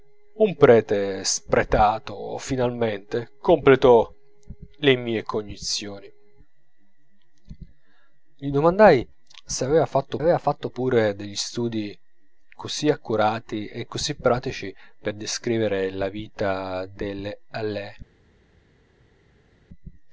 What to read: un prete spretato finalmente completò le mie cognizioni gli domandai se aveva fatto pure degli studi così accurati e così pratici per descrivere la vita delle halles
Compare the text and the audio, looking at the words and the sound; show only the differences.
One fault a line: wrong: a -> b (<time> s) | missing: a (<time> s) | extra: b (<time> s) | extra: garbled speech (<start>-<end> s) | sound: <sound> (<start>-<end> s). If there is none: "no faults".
extra: aveva fatto (10.2 s)